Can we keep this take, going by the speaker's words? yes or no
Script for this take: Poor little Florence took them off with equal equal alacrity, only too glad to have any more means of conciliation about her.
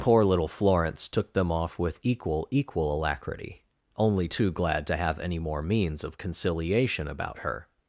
yes